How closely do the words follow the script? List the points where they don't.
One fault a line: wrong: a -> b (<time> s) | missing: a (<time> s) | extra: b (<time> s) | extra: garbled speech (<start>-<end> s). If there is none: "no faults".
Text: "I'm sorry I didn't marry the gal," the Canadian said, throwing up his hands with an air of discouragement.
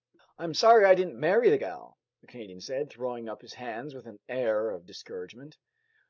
no faults